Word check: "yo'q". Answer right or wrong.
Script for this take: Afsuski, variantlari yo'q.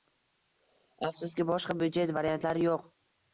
right